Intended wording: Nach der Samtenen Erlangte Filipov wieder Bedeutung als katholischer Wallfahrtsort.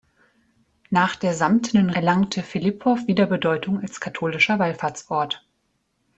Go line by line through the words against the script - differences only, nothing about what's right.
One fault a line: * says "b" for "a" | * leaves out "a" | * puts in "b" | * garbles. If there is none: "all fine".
all fine